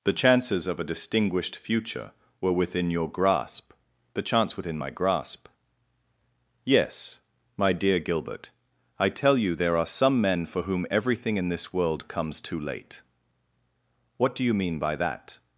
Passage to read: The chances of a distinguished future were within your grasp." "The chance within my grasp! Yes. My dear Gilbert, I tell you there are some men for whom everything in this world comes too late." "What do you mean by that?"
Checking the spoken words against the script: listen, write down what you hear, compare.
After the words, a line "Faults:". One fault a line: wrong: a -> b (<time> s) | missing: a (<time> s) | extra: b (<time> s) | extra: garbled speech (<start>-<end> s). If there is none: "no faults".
The chances of a distinguished future were within your grasp." "The chance within my grasp! Yes. My dear Gilbert, I tell you there are some men for whom everything in this world comes too late." "What do you mean by that?"
Faults:
no faults